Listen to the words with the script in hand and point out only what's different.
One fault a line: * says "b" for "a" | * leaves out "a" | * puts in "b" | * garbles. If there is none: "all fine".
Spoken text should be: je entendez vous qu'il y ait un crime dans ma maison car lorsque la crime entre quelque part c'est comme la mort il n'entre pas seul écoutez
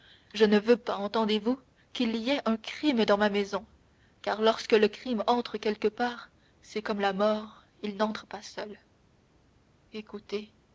* puts in "ne veux pas"
* says "le" for "la"